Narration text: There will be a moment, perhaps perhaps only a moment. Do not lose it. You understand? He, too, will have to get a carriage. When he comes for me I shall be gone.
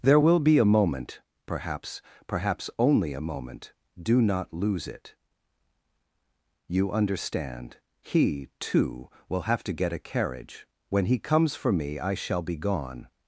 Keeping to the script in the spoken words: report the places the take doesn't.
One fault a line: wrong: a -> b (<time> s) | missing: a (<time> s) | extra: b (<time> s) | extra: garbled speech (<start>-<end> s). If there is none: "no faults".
no faults